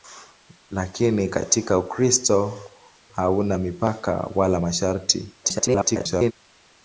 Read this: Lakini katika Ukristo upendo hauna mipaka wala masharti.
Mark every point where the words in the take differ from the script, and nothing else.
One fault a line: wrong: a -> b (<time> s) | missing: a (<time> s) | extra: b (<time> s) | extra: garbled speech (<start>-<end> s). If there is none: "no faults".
missing: upendo (2.6 s)
extra: garbled speech (5.4-6.3 s)